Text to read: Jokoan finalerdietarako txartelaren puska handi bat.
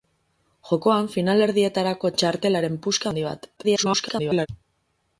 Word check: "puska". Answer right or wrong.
right